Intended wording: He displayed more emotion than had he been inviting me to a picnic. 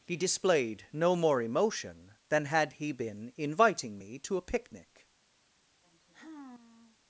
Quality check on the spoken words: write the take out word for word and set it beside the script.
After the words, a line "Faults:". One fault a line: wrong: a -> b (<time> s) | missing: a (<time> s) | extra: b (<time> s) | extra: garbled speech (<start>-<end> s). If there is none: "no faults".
He displayed no more emotion than had he been inviting me to a picnic.
Faults:
extra: no (0.9 s)